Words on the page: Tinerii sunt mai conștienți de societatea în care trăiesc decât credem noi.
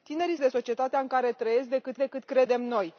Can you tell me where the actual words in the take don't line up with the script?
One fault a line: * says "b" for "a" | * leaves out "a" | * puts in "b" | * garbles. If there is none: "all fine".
* leaves out "sunt mai conștienți"
* puts in "decât"